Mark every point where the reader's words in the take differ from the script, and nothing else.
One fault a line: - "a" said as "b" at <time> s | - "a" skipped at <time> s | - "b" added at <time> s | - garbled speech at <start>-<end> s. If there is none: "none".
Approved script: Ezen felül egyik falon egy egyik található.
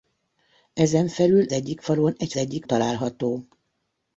none